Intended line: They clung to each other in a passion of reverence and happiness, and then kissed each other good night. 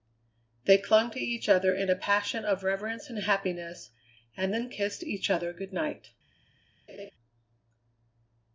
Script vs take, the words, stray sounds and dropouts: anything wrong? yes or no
yes